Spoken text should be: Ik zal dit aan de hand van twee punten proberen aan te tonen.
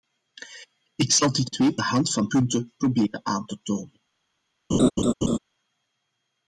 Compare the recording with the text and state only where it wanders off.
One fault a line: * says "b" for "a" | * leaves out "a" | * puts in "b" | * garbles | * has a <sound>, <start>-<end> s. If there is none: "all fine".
* says "twee" for "aan"
* leaves out "twee"
* has a laugh, 4.7-5.4 s